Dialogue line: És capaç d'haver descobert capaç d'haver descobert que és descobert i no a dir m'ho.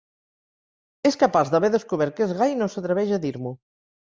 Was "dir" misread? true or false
false